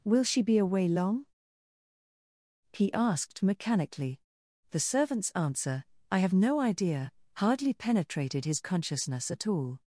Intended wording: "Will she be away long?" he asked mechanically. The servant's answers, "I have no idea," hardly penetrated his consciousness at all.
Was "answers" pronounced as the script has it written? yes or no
no